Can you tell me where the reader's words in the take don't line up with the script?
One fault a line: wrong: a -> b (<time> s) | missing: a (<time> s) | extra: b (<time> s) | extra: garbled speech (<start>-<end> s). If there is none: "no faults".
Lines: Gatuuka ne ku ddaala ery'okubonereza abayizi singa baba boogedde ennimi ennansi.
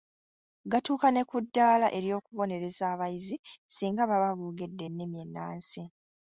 no faults